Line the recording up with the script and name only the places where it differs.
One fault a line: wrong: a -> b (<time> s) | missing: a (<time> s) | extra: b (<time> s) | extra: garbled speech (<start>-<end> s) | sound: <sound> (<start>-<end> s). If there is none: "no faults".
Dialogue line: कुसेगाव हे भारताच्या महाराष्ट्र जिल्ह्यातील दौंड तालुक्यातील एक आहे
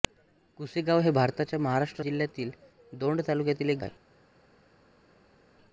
no faults